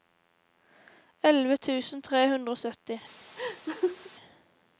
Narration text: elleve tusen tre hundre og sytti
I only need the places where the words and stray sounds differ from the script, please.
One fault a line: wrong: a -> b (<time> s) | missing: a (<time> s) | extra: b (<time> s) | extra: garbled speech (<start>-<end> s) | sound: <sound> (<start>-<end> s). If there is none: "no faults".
sound: laugh (3.4-4.1 s)